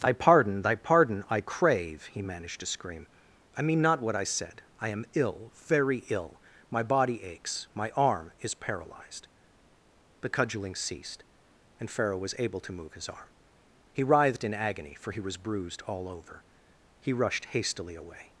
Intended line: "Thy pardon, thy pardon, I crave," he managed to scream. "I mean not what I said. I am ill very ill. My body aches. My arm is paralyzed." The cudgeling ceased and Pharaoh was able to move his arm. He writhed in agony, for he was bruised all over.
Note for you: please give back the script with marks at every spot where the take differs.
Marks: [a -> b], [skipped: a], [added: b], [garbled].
"Thy pardon, thy pardon, I crave," he managed to scream. "I mean not what I said. I am ill very ill. My body aches. My arm is paralyzed." The cudgeling ceased and Pharaoh was able to move his arm. He writhed in agony, for he was bruised all over. [added: He rushed hastily away]